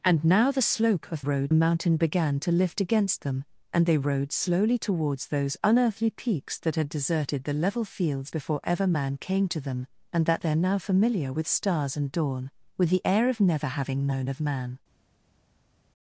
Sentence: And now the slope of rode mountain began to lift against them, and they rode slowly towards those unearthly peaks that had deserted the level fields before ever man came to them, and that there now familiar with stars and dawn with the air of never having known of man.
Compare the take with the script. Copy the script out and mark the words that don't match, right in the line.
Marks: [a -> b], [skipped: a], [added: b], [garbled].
And now the slope of rode mountain began to lift against them, and they rode slowly towards those unearthly peaks that had deserted the level fields before ever man came to them, and that there now familiar with stars and dawn with the air of never having known of man.